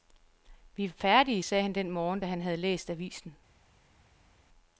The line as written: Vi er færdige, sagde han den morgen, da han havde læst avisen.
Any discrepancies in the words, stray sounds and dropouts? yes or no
no